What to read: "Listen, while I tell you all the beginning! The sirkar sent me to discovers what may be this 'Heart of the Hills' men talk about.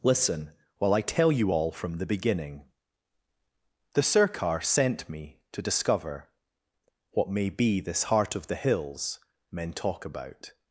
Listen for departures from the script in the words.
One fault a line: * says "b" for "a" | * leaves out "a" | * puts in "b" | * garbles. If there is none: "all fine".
* puts in "from"
* says "discover" for "discovers"